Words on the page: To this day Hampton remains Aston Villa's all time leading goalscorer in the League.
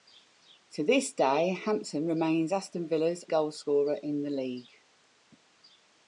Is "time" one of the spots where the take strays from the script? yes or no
yes